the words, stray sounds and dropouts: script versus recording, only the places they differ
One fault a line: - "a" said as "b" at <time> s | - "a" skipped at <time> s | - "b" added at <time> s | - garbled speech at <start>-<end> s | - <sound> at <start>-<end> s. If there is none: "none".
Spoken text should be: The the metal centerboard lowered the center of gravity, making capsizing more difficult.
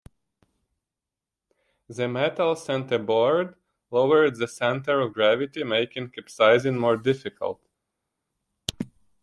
- "the" skipped at 2.1 s